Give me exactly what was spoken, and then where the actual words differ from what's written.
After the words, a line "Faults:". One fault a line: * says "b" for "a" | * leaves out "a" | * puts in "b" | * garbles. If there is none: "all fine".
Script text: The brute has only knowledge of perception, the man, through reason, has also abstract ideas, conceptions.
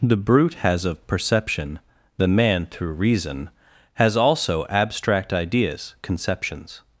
The brute has of perception, the man, through reason, has also abstract ideas, conceptions.
Faults:
* leaves out "only knowledge"